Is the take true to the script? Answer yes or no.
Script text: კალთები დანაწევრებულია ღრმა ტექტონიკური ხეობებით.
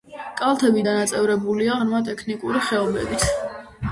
yes